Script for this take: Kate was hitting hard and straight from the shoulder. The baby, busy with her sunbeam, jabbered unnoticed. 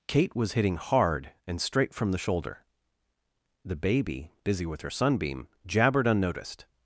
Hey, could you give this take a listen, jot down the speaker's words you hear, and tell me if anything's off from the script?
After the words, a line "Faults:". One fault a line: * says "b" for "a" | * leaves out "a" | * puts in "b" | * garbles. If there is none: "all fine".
Kate was hitting hard and straight from the shoulder. The baby, busy with her sunbeam, jabbered unnoticed.
Faults:
all fine